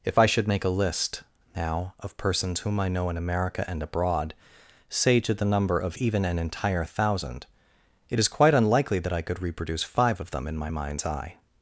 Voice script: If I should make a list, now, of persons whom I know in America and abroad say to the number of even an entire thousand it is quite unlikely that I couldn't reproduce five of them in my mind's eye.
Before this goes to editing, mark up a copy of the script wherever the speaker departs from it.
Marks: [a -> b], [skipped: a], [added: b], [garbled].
If I should make a list, now, of persons whom I know in America and abroad say to the number of even an entire thousand it is quite unlikely that I [couldn't -> could] reproduce five of them in my mind's eye.